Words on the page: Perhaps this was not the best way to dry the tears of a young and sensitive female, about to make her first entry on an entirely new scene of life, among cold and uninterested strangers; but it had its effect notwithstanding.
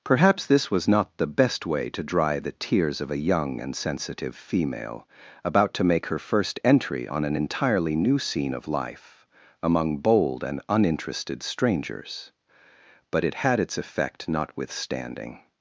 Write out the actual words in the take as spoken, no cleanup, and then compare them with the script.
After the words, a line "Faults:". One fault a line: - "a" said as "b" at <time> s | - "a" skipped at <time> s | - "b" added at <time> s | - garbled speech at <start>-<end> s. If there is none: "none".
Perhaps this was not the best way to dry the tears of a young and sensitive female, about to make her first entry on an entirely new scene of life, among bold and uninterested strangers; but it had its effect notwithstanding.
Faults:
- "cold" said as "bold" at 10.0 s